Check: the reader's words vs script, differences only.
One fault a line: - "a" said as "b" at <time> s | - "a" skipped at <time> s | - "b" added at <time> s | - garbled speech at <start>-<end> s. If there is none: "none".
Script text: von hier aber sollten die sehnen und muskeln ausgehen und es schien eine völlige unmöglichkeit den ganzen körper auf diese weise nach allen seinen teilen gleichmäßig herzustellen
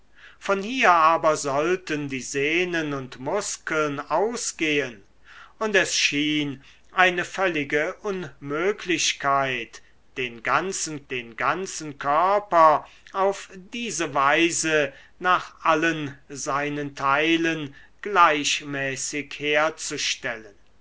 - "den ganzen" added at 11.1 s